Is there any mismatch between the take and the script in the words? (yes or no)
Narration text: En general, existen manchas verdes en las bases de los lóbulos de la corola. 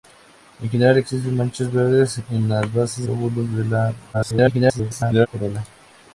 yes